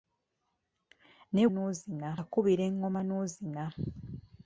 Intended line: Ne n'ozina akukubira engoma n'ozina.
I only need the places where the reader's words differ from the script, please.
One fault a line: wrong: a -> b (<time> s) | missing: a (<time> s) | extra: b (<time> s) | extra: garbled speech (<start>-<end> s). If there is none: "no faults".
no faults